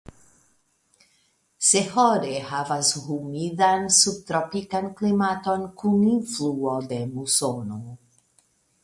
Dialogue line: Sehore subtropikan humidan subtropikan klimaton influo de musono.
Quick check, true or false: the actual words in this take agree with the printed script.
false